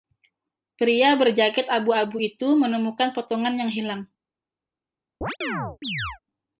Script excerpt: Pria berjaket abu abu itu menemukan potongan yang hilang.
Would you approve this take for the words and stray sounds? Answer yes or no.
no